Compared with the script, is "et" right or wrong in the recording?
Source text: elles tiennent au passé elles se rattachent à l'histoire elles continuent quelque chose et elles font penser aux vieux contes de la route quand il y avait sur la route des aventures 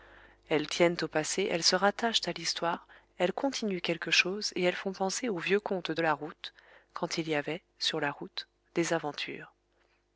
right